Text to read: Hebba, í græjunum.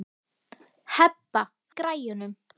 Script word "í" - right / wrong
right